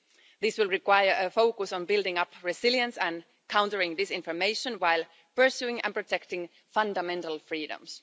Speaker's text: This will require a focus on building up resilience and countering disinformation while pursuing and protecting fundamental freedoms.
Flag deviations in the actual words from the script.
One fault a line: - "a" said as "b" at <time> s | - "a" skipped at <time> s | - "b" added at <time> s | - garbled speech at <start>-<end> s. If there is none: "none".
none